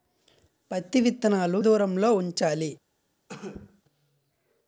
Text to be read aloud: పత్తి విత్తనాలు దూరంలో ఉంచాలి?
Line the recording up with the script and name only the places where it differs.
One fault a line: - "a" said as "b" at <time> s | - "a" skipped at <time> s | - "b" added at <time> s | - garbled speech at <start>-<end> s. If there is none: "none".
none